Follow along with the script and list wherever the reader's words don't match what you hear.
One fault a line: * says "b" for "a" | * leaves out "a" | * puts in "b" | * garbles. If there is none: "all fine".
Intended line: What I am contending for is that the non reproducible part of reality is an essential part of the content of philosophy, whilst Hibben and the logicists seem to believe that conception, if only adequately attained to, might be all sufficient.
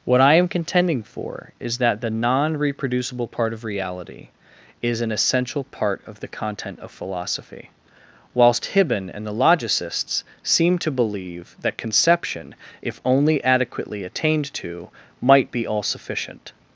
all fine